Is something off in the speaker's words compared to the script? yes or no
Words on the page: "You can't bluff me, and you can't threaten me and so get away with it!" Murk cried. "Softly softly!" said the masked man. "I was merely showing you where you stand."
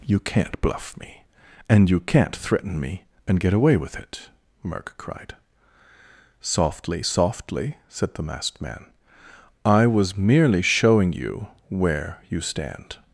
yes